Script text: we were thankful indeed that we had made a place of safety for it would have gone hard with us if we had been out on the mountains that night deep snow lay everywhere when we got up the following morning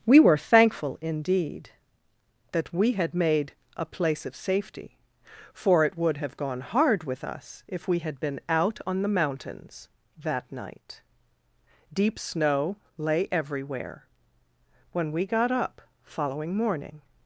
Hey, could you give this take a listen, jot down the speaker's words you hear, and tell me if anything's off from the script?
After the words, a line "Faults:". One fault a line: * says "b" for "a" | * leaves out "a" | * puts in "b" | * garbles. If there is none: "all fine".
we were thankful indeed that we had made a place of safety for it would have gone hard with us if we had been out on the mountains that night deep snow lay everywhere when we got up following morning
Faults:
* leaves out "the"